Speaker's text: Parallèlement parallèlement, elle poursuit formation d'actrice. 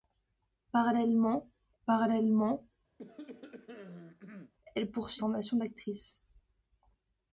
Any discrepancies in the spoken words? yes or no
no